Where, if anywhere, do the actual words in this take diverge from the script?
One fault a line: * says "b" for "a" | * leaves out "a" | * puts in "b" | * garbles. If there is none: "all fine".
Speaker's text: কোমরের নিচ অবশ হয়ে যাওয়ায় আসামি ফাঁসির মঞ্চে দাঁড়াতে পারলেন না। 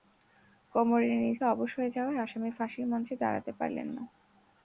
all fine